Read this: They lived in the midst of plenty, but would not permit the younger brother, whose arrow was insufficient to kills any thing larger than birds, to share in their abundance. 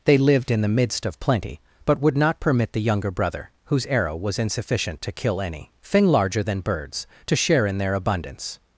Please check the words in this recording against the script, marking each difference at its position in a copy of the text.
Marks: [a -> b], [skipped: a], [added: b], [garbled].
They lived in the midst of plenty, but would not permit the younger brother, whose arrow was insufficient to [kills -> kill] any thing larger than birds, to share in their abundance.